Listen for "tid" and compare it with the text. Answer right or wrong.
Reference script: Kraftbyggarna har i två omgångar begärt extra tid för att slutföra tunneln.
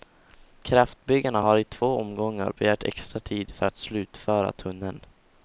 right